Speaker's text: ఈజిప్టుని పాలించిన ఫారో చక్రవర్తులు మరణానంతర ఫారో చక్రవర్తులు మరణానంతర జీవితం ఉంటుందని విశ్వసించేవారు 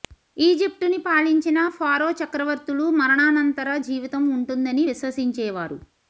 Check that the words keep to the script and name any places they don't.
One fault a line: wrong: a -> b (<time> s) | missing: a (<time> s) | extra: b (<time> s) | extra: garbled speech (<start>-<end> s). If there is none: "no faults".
missing: ఫారో చక్రవర్తులు మరణానంతర (3.8 s)